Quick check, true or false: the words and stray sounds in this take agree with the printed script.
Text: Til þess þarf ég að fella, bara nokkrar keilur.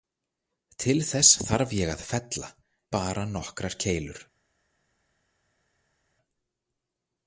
true